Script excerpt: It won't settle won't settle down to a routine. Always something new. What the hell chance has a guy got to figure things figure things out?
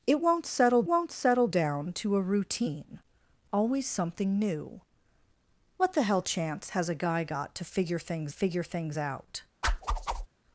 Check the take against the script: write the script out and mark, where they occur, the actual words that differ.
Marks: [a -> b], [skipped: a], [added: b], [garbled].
It won't settle won't settle down to a routine. Always something new. What the hell chance has a guy got to figure things figure things out?